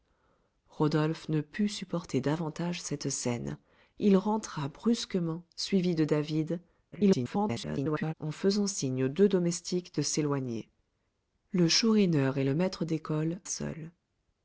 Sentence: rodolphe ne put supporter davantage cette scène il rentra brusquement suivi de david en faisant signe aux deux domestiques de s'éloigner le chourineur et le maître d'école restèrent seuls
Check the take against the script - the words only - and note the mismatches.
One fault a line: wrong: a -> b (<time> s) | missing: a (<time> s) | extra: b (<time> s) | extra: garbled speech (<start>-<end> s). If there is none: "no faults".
extra: garbled speech (6.9-8.1 s)
missing: restèrent (13.4 s)